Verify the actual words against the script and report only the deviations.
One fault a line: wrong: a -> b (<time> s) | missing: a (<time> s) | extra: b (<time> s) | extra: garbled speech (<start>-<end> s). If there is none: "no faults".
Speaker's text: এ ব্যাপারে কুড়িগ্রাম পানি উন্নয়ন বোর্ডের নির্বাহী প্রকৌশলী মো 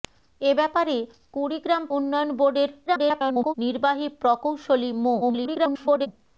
missing: পানি (1.8 s)
extra: garbled speech (2.9-3.5 s)
extra: garbled speech (5.2-6.1 s)